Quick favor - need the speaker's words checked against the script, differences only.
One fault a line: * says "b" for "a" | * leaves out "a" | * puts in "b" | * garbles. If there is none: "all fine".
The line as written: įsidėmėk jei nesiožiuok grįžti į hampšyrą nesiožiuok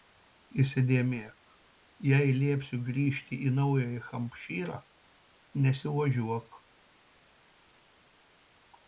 * says "liepsiu" for "nesiožiuok"
* puts in "naująjį"